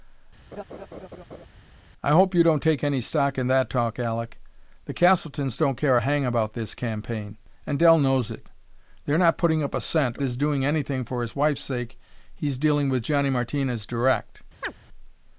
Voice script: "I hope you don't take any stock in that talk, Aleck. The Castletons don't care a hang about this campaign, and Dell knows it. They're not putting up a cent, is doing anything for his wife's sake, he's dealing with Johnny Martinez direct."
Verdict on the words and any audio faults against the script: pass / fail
fail